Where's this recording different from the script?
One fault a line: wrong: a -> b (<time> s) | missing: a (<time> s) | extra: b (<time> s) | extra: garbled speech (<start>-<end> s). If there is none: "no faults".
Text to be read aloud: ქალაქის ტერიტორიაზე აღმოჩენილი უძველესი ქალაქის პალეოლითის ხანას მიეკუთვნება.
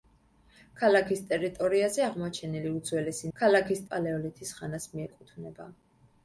no faults